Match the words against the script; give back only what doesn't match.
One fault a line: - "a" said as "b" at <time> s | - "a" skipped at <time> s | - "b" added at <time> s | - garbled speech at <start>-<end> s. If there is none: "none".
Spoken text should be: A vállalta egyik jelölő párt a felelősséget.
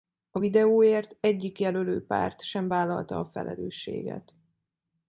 - "vállalta" said as "videóért" at 0.4 s
- "sem vállalta" added at 2.4 s